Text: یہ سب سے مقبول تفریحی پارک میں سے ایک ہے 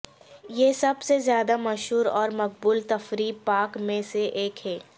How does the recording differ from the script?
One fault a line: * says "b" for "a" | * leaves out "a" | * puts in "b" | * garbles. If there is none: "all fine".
* puts in "زیادہ مشہور اور"